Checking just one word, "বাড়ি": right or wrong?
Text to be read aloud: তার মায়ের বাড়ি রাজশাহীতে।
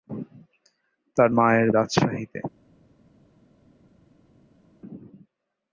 wrong